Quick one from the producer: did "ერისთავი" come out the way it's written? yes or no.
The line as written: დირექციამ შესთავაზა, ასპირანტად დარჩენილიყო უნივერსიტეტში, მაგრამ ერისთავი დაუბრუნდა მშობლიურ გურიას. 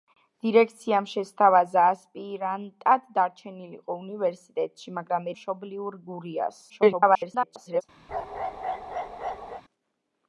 no